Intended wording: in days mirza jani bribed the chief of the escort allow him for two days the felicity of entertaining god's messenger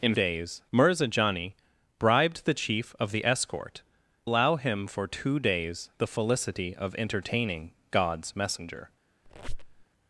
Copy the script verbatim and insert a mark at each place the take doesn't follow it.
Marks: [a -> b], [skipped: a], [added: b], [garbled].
in days mirza jani bribed the chief of the escort allow him for two days the felicity of entertaining god's messenger